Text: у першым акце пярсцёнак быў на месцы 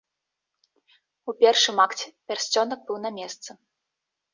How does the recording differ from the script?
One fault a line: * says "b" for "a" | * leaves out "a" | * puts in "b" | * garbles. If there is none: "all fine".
all fine